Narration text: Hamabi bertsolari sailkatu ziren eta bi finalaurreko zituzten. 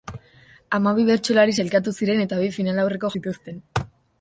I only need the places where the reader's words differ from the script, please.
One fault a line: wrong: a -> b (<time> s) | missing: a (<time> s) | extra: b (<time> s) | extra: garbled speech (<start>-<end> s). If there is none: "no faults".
no faults